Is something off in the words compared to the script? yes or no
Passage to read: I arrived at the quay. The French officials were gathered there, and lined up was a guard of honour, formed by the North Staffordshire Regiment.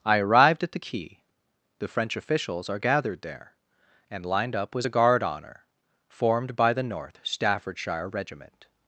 yes